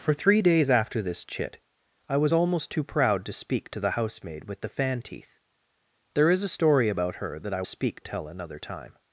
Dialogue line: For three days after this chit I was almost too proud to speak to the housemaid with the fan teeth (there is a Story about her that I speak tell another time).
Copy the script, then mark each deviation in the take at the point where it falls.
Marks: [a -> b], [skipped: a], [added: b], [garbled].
For three days after this chit I was almost too proud to speak to the housemaid with the fan teeth (there is a Story about her that I speak tell another time).